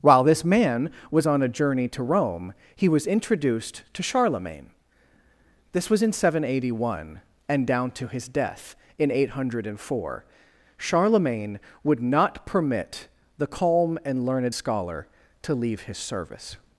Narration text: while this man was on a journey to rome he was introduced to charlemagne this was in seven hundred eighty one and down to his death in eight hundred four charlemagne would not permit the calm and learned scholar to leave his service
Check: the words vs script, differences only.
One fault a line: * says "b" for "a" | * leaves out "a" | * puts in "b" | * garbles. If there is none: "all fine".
all fine